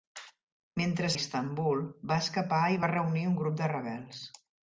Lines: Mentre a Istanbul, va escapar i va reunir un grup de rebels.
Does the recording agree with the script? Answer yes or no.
yes